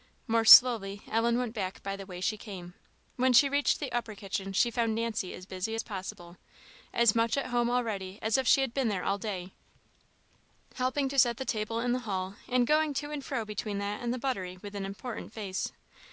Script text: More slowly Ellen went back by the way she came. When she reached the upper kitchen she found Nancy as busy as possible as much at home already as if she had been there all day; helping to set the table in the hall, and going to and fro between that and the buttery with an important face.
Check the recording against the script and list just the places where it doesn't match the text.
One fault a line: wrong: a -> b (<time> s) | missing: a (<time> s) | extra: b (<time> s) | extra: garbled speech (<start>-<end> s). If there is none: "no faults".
no faults